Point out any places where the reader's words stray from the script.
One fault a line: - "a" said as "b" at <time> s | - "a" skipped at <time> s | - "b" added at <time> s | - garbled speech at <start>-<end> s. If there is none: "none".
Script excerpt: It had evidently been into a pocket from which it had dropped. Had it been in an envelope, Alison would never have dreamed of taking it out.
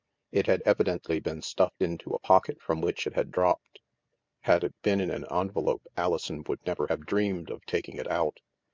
- "stuffed" added at 1.4 s